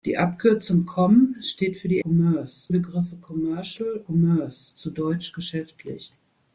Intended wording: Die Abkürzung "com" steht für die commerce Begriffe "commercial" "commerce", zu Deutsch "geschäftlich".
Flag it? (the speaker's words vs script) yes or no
no